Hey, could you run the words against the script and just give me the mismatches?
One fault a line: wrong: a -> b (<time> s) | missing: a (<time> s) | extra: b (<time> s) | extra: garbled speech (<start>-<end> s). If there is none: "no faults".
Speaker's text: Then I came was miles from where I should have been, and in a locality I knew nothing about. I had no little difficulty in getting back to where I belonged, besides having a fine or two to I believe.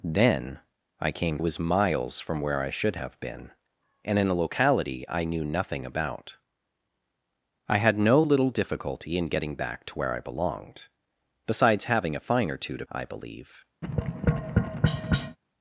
no faults